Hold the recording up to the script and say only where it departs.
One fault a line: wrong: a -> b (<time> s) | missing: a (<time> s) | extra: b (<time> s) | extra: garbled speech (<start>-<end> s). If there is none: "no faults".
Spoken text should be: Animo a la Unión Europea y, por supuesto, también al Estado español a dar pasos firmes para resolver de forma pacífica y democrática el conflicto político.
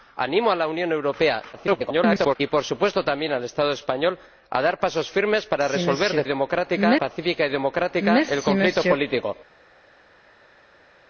extra: garbled speech (1.5-2.4 s)
wrong: forma -> democrática (6.3 s)